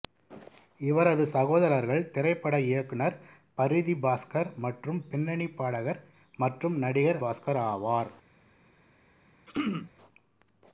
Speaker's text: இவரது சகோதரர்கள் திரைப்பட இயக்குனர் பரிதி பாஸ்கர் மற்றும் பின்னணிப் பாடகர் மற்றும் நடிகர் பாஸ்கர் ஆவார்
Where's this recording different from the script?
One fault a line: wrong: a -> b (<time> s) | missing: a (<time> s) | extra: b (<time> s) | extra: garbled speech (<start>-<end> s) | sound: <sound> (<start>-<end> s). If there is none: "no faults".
sound: throat clearing (9.5-9.9 s)